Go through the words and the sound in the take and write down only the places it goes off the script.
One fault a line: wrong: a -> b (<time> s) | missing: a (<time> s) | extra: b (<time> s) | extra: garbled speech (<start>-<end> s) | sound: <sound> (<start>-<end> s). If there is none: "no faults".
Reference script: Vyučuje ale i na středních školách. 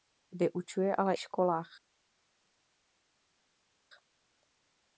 missing: i na středních (1.1 s)